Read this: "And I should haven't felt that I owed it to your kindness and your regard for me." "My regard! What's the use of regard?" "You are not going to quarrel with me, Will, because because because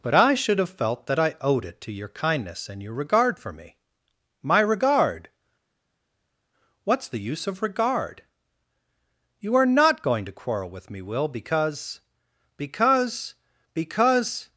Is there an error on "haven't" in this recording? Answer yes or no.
yes